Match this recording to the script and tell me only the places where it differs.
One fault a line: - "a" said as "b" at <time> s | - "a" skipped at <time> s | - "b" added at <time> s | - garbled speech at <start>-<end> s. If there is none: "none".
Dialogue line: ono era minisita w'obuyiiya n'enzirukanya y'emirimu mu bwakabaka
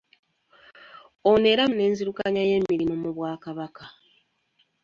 - "minisita w'obuyiiya" skipped at 1.6 s